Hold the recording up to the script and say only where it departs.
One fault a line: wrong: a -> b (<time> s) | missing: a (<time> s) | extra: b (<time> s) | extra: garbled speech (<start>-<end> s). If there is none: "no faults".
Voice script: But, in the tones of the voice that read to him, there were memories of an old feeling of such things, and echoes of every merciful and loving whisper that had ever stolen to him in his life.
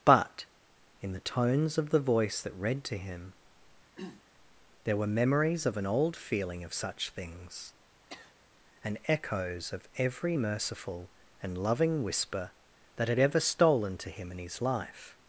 no faults